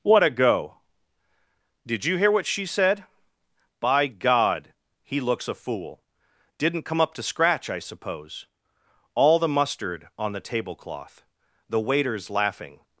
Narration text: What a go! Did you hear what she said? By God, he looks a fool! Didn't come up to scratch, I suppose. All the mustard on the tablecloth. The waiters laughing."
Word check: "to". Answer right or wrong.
right